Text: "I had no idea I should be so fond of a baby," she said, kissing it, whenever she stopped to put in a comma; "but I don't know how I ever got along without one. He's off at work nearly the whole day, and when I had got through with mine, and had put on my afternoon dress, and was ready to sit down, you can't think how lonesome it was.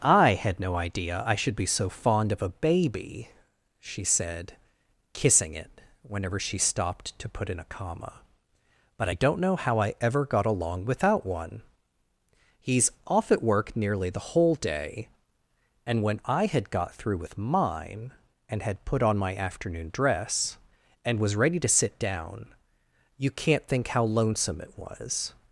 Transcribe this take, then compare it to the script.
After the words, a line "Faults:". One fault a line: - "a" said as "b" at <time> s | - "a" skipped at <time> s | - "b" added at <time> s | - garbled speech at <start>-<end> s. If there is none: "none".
"I had no idea I should be so fond of a baby," she said, kissing it, whenever she stopped to put in a comma; "but I don't know how I ever got along without one. He's off at work nearly the whole day, and when I had got through with mine, and had put on my afternoon dress, and was ready to sit down, you can't think how lonesome it was.
Faults:
none